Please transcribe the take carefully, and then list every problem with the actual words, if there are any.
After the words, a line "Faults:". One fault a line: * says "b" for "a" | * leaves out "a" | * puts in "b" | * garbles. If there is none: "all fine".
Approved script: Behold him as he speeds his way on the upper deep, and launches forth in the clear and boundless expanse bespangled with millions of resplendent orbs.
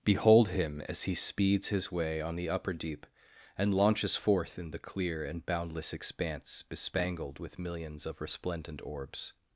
Behold him as he speeds his way on the upper deep, and launches forth in the clear and boundless expanse bespangled with millions of resplendent orbs.
Faults:
all fine